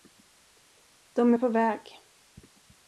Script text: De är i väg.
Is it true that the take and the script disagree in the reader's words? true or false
true